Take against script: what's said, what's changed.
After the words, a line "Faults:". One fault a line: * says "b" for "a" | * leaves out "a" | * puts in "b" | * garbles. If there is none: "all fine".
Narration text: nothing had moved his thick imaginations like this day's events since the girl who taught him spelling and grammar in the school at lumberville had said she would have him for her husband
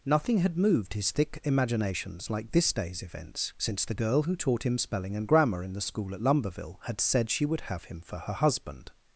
nothing had moved his thick imaginations like this day's events since the girl who taught him spelling and grammar in the school at lumberville had said she would have him for her husband
Faults:
all fine